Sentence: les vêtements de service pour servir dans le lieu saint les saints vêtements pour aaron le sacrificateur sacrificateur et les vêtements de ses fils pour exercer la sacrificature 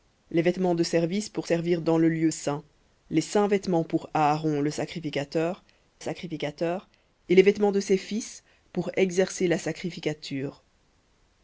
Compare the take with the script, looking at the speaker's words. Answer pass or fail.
pass